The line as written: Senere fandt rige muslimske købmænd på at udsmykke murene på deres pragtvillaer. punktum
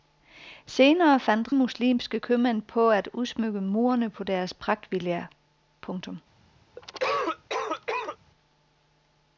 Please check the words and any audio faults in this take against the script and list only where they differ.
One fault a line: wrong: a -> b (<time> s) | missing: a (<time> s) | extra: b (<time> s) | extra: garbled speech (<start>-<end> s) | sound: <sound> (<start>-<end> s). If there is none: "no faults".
missing: rige (1.5 s)
sound: cough (6.8-8.2 s)